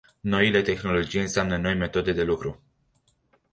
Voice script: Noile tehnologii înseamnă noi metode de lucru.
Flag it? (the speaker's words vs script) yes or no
no